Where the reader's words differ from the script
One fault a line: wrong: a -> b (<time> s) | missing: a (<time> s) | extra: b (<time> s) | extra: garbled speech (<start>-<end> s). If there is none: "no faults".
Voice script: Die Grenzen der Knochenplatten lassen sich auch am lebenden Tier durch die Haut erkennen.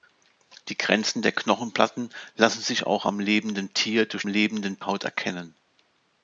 wrong: die -> lebenden (4.3 s)